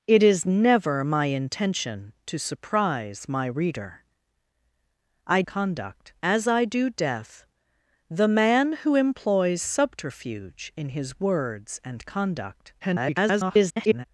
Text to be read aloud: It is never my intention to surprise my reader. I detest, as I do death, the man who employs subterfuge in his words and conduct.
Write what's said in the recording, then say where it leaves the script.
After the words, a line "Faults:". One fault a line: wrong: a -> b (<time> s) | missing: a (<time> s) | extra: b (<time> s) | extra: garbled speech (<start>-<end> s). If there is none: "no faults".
It is never my intention to surprise my reader. I conduct, as I do death, the man who employs subterfuge in his words and conduct. [garbled]
Faults:
wrong: detest -> conduct (5.5 s)
extra: garbled speech (12.8-14.1 s)